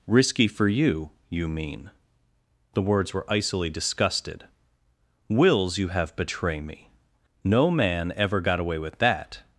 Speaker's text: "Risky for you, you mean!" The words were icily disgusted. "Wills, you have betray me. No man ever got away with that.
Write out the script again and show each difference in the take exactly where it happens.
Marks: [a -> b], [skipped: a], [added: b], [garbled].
"Risky for you, you mean!" The words were icily disgusted. "Wills, you have betray me. No man ever got away with that.